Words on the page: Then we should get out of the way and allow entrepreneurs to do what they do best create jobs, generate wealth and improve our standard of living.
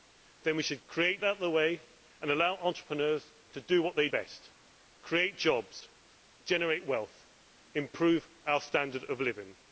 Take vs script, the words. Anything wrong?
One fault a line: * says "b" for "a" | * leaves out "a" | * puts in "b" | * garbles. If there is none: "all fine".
* says "create" for "get"
* leaves out "do"